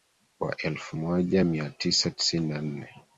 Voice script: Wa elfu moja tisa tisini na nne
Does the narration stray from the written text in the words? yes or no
yes